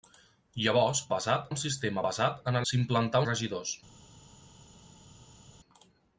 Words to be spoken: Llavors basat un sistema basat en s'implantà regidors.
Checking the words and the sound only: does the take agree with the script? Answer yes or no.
yes